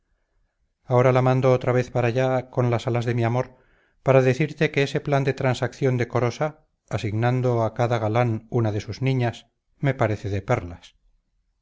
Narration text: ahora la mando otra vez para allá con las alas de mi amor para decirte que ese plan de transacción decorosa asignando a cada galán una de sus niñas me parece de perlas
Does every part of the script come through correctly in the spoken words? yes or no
yes